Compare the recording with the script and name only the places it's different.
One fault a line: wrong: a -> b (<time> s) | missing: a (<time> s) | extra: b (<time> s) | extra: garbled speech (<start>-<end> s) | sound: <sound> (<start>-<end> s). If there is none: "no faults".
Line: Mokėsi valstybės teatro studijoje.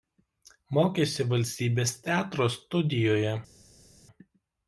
no faults